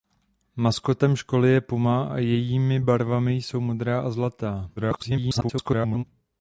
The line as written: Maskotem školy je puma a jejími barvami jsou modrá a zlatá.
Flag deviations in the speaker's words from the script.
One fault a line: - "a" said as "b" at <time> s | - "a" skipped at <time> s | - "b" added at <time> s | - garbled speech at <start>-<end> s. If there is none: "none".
- garbled speech at 4.8-6.0 s